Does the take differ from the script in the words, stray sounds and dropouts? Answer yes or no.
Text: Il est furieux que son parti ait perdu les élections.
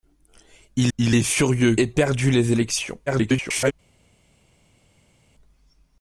yes